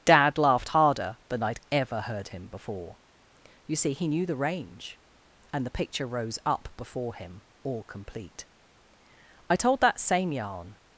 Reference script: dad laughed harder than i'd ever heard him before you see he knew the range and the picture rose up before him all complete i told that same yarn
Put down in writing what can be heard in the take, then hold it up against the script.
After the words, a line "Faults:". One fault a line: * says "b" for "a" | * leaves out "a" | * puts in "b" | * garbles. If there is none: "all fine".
dad laughed harder than i'd ever heard him before you see he knew the range and the picture rose up before him all complete i told that same yarn
Faults:
all fine